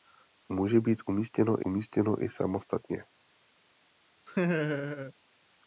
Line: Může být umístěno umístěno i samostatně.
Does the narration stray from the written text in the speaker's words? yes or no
no